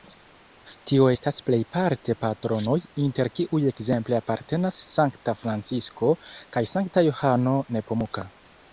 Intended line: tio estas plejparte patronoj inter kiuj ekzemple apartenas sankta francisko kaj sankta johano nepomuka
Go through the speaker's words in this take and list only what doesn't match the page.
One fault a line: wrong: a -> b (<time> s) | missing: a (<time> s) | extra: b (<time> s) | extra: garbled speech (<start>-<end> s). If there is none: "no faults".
no faults